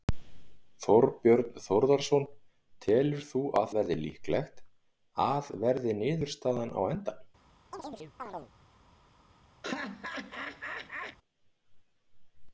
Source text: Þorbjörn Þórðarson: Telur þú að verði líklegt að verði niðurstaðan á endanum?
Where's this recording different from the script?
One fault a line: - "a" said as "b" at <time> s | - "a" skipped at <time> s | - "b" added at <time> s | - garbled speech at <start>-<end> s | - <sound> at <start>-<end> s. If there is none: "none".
- chirp at 7.7-8.5 s
- laugh at 9.6-11.2 s